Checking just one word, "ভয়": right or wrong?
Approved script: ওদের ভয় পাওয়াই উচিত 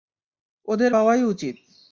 wrong